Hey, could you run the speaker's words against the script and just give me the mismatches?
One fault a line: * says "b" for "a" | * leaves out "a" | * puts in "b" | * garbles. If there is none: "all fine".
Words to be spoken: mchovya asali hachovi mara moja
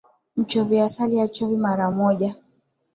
all fine